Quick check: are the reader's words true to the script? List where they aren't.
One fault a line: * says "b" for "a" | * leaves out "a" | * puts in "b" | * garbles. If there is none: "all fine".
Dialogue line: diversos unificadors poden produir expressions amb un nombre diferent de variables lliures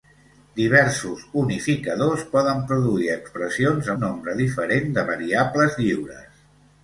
* leaves out "amb"